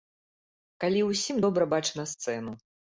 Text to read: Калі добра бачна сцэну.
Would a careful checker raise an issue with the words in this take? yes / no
yes